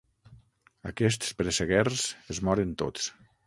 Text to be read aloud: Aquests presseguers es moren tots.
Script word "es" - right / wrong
right